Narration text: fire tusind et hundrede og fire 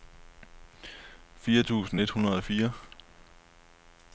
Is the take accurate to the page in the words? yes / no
yes